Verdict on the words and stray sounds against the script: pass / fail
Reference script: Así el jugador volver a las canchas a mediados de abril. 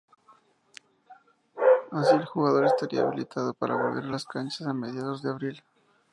fail